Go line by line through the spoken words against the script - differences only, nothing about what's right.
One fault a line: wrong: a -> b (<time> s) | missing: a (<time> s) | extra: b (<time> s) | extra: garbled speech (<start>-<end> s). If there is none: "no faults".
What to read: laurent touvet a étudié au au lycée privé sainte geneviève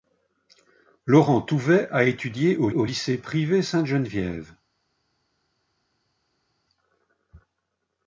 no faults